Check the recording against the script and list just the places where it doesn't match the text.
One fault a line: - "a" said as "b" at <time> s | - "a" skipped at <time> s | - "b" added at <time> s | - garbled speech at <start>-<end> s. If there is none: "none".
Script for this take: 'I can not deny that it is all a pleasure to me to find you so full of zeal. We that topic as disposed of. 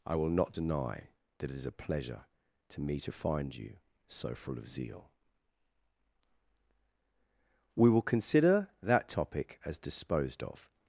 - "can" said as "will" at 0.1 s
- "all" skipped at 1.7 s
- "will consider" added at 7.9 s